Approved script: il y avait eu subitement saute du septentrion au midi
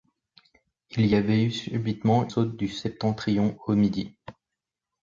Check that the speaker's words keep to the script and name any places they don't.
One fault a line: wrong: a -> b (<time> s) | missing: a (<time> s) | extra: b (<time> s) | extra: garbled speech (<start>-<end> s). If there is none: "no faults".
no faults